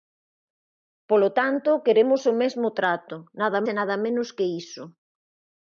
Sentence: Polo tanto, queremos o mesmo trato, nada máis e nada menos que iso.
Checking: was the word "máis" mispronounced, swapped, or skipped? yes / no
yes